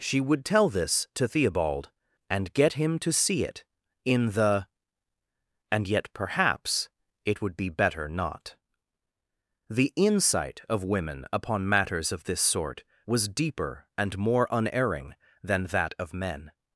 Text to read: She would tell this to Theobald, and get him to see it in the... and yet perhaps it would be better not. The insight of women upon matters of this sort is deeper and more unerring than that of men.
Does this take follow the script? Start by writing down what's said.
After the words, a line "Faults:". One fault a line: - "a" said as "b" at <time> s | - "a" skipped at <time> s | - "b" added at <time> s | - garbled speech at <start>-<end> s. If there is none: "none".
She would tell this to Theobald, and get him to see it in the... and yet perhaps it would be better not. The insight of women upon matters of this sort was deeper and more unerring than that of men.
Faults:
- "is" said as "was" at 13.1 s